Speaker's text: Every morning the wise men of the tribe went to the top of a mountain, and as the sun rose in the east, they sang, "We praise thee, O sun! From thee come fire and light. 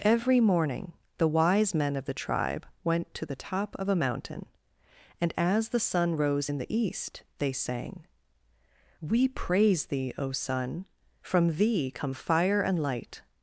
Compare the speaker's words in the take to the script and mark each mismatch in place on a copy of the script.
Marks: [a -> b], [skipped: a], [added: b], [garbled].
Every morning the wise men of the tribe went to the top of a mountain, and as the sun rose in the east, they sang, "We praise thee, O sun! From thee come fire and light.